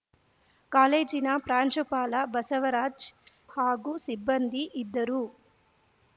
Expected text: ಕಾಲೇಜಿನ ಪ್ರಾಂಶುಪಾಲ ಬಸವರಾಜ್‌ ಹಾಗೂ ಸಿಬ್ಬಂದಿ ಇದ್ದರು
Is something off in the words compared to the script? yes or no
no